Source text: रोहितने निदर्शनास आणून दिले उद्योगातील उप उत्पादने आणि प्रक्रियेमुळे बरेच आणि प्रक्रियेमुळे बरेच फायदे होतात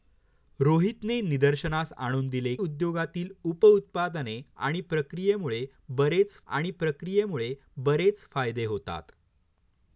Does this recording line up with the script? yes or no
yes